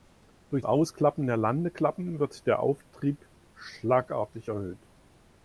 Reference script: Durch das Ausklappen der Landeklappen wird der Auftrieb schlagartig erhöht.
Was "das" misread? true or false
true